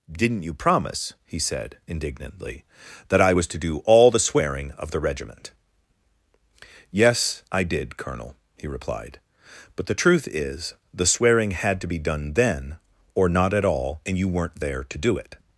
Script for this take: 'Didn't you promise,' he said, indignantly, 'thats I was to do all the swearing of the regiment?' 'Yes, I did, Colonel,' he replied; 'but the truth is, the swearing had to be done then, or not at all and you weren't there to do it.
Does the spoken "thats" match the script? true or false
false